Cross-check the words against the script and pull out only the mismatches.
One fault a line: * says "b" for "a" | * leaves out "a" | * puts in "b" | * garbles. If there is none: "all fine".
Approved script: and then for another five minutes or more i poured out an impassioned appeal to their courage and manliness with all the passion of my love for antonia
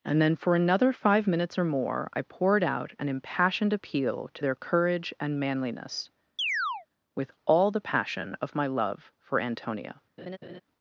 all fine